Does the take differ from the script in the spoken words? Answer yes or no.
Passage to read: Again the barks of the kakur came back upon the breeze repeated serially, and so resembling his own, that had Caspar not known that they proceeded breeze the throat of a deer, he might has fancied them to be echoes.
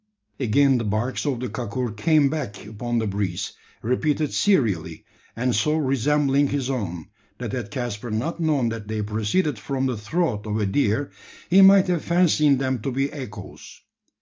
yes